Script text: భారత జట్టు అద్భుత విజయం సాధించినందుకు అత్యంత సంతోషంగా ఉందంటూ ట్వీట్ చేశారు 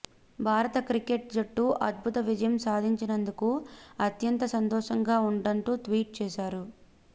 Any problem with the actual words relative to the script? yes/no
yes